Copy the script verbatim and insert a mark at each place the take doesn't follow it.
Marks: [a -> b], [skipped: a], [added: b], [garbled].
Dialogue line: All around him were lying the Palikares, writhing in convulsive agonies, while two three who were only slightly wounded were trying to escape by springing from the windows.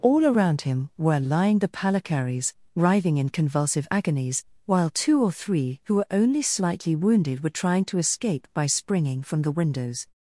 All around him were lying the Palikares, writhing in convulsive agonies, while two [added: or] three who were only slightly wounded were trying to escape by springing from the windows.